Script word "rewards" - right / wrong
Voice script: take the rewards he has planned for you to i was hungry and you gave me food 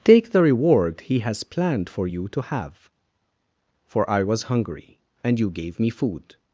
wrong